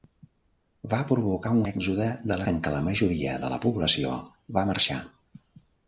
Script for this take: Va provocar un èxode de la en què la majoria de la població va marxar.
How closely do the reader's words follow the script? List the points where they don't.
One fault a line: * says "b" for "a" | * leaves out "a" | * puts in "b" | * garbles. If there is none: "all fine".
all fine